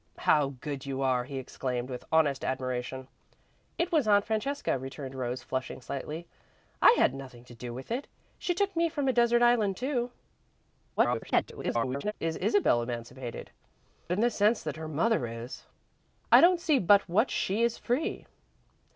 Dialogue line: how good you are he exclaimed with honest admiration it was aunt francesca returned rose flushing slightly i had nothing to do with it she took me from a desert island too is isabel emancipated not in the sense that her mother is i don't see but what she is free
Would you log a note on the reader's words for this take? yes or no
yes